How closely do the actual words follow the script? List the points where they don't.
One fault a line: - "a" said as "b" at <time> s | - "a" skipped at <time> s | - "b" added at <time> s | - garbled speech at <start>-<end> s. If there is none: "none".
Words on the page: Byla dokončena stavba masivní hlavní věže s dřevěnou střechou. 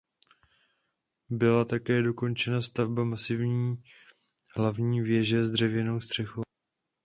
- "také" added at 1.6 s